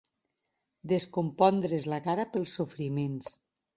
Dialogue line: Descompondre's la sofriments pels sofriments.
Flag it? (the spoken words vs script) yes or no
yes